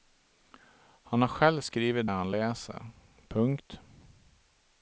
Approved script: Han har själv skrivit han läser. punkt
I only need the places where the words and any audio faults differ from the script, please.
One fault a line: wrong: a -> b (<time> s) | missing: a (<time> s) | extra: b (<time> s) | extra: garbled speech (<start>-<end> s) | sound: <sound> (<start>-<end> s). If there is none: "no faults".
no faults